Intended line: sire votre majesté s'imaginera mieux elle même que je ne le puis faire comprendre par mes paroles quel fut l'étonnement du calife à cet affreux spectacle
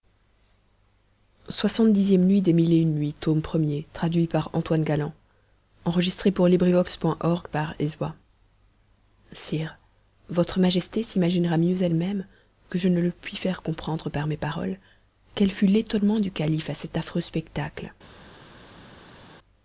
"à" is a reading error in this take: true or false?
false